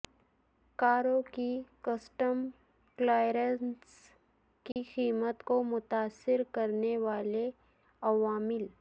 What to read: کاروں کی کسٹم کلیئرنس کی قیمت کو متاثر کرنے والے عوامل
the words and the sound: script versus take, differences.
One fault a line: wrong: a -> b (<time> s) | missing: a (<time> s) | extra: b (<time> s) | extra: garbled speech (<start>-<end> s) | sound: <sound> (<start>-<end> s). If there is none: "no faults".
sound: dropout (4.7-4.8 s)